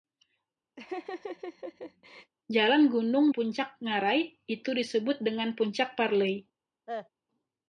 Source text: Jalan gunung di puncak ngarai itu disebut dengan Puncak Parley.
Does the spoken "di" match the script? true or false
false